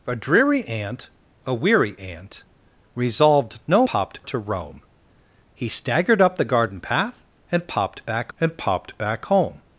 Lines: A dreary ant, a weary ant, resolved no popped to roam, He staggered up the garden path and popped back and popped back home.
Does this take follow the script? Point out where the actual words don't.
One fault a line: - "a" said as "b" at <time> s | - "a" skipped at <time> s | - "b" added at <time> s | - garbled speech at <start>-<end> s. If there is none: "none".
none